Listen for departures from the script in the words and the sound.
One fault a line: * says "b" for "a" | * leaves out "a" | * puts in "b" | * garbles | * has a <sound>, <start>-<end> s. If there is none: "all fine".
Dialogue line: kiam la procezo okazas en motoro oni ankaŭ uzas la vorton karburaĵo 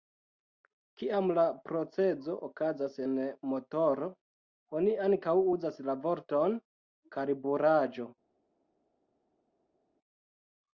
all fine